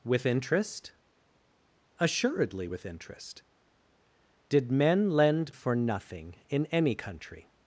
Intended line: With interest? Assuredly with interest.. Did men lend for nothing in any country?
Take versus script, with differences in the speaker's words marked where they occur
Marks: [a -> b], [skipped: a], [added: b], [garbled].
With interest? Assuredly with interest.. Did men lend for nothing in any country?